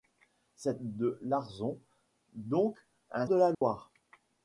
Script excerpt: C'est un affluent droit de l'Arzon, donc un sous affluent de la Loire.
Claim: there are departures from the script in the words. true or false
true